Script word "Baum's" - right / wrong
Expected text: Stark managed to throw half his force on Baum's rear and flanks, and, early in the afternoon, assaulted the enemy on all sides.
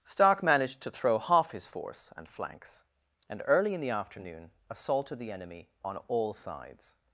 wrong